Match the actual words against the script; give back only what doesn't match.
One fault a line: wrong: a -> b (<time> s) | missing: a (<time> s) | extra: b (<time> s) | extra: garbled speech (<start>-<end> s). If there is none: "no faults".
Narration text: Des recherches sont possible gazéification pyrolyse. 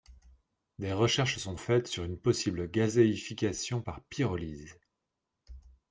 extra: faites sur une (1.5 s)
extra: par (3.8 s)